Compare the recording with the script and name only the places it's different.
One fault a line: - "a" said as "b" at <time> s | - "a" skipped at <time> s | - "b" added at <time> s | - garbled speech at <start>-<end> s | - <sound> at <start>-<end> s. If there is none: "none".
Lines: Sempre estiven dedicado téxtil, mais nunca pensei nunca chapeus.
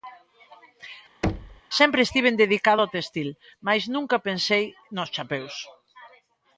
- thud at 1.2-1.6 s
- "ao" added at 2.8 s
- "nunca" said as "nos" at 5.0 s